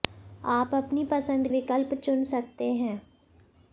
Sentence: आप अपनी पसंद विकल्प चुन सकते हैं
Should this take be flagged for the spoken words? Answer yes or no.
no